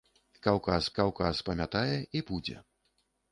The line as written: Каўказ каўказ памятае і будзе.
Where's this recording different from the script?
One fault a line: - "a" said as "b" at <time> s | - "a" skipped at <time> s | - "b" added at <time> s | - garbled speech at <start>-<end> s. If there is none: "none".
none